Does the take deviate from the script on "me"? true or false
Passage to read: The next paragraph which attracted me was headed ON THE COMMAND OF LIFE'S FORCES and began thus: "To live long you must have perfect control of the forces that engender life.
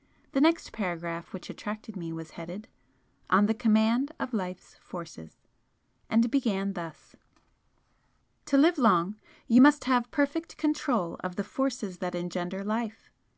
false